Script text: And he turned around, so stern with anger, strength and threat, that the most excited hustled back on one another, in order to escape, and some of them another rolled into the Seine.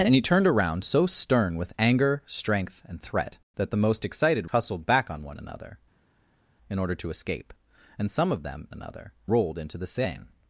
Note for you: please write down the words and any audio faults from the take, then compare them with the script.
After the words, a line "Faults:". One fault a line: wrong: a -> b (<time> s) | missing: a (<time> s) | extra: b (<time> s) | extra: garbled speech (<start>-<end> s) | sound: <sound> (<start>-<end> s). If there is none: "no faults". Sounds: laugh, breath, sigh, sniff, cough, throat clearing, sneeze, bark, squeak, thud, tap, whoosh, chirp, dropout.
And he turned around, so stern with anger, strength and threat, that the most excited hustled back on one another, in order to escape, and some of them another rolled into the Seine.
Faults:
no faults